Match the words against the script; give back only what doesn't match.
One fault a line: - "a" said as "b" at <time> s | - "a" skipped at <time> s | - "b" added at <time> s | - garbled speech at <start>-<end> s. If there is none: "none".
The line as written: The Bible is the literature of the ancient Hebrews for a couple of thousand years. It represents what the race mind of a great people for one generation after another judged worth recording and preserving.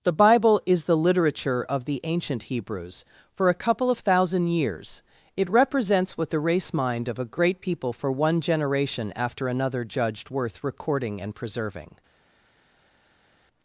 none